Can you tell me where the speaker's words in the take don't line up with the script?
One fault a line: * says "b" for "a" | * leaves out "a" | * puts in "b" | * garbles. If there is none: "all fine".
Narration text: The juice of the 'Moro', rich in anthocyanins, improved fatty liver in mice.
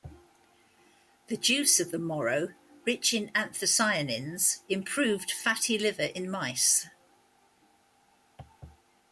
all fine